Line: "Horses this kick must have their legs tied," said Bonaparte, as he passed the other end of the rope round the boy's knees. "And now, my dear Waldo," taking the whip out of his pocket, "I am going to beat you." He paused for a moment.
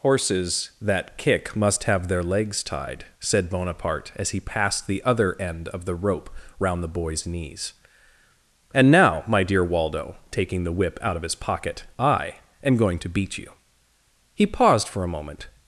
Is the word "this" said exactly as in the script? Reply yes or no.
no